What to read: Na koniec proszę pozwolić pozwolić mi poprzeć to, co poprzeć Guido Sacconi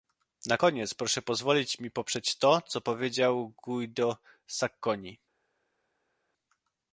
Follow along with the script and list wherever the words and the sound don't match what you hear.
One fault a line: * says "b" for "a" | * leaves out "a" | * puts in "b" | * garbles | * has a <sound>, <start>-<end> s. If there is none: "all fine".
* leaves out "pozwolić"
* says "powiedział" for "poprzeć"